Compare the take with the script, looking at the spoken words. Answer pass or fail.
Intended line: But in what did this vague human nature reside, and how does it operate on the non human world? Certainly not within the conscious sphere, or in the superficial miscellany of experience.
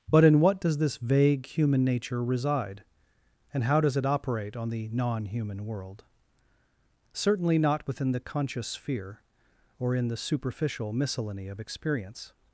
fail